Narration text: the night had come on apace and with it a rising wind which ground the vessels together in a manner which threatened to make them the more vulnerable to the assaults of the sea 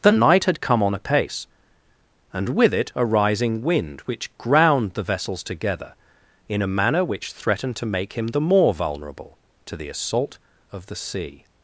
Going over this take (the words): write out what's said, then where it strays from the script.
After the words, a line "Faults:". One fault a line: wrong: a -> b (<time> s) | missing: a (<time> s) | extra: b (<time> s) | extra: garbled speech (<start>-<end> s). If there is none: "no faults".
the night had come on apace and with it a rising wind which ground the vessels together in a manner which threatened to make him the more vulnerable to the assault of the sea
Faults:
wrong: them -> him (8.1 s)
wrong: assaults -> assault (9.9 s)